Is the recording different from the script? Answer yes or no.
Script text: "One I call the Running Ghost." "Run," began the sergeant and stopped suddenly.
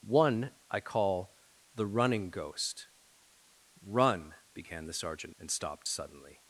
no